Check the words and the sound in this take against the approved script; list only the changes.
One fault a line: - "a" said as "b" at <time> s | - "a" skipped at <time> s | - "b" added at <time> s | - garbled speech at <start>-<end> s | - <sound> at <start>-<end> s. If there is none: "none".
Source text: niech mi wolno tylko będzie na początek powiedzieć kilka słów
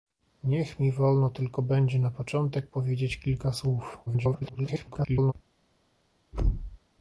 - garbled speech at 4.1-5.3 s
- thud at 6.3-6.8 s